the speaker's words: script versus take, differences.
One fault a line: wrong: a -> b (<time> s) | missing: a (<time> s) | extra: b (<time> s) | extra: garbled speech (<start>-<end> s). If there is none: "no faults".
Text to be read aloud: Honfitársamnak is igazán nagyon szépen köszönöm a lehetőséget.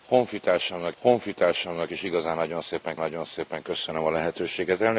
extra: honfitársamnak (1.0 s)
extra: nagyon szépen (3.0 s)